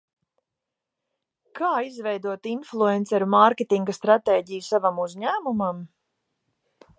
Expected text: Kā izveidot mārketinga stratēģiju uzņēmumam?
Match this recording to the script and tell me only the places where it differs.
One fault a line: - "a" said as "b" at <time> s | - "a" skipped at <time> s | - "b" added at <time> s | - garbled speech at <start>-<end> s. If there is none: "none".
- "influenceru" added at 2.5 s
- "savam" added at 4.7 s